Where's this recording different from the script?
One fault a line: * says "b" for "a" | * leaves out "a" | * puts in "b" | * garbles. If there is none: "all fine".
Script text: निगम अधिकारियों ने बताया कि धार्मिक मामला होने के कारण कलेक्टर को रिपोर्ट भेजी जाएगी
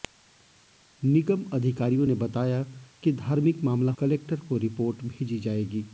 * leaves out "होने के कारण"